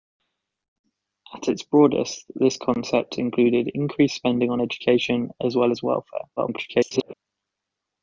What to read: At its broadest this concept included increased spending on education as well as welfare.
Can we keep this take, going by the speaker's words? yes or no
no